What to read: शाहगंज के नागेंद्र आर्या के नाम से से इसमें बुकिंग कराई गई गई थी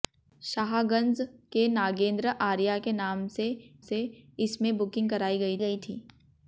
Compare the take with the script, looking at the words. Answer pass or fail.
pass